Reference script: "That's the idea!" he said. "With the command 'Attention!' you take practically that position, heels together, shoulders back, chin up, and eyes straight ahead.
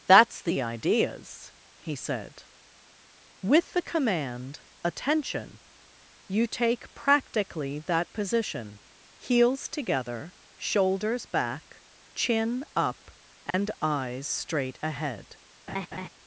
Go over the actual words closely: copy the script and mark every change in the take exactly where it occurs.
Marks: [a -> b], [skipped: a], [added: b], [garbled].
"That's the [idea!" -> ideas] he said. "With the command 'Attention!' you take practically that position, heels together, shoulders back, chin up, and eyes straight ahead.